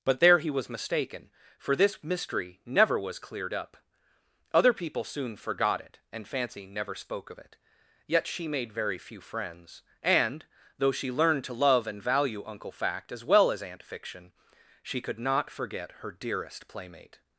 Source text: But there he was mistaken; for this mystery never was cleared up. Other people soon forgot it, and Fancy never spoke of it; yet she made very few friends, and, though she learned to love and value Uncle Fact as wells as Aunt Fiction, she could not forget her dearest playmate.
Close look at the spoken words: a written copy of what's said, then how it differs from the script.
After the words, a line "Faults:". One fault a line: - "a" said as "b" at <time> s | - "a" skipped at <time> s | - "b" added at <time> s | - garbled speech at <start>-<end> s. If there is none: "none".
But there he was mistaken; for this mystery never was cleared up. Other people soon forgot it, and Fancy never spoke of it; yet she made very few friends, and, though she learned to love and value Uncle Fact as well as Aunt Fiction, she could not forget her dearest playmate.
Faults:
- "wells" said as "well" at 13.3 s